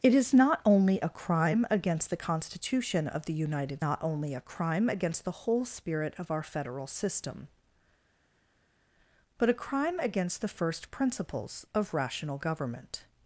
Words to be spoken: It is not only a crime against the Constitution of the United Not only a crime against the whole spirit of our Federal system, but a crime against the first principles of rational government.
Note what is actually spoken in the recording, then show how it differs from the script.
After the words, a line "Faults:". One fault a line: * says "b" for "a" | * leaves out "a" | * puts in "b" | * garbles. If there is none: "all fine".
It is not only a crime against the Constitution of the United Not only a crime against the whole spirit of our Federal system, but a crime against the first principles of rational government.
Faults:
all fine